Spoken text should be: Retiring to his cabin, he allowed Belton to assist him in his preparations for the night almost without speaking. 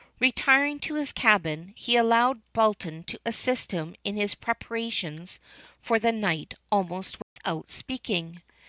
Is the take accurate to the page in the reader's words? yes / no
yes